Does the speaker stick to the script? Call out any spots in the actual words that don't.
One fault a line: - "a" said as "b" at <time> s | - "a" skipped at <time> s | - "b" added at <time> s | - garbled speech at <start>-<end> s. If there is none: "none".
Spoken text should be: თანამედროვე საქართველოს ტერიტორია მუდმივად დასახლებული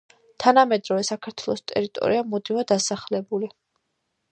none